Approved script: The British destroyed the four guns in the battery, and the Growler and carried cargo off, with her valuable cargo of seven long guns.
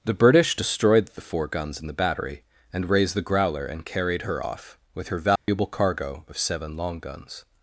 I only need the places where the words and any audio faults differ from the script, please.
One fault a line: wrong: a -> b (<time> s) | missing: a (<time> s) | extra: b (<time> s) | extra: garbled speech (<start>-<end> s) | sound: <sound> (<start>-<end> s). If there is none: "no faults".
extra: raised (2.9 s)
wrong: cargo -> her (4.2 s)
sound: dropout (5.4-5.5 s)